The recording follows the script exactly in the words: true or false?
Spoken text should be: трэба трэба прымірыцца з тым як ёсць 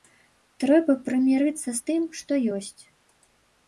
false